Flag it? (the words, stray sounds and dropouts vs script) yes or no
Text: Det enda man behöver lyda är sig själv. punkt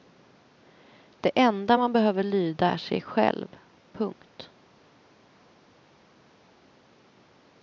no